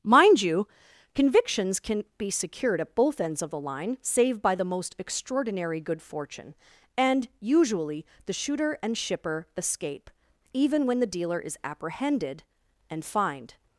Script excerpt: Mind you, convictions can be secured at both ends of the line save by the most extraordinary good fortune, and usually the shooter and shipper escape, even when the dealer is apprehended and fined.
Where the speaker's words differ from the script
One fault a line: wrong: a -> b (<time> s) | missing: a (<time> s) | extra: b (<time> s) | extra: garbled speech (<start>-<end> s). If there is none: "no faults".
no faults